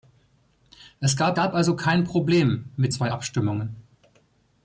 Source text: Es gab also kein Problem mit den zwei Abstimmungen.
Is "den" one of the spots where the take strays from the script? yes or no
yes